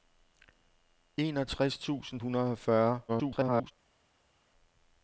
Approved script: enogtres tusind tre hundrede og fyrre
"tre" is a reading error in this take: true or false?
true